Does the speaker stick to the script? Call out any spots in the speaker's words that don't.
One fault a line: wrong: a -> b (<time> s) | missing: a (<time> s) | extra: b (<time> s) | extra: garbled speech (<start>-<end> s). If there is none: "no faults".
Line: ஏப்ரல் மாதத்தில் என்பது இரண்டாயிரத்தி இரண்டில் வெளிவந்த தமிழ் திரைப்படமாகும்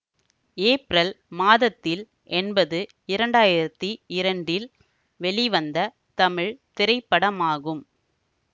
no faults